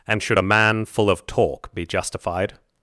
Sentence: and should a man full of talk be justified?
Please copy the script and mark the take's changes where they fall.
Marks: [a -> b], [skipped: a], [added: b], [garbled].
and should a man full of talk be justified?